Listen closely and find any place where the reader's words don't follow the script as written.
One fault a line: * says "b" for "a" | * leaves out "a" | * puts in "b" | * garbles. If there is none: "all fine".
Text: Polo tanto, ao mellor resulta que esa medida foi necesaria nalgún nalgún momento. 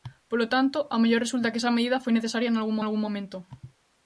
all fine